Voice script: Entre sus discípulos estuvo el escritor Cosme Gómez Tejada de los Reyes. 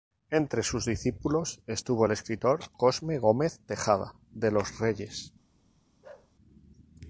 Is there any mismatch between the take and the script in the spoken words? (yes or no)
no